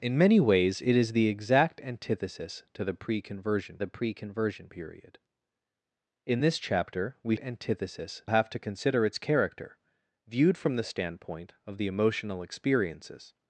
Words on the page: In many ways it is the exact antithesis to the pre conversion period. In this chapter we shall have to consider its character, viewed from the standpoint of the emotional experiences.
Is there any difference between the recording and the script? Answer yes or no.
yes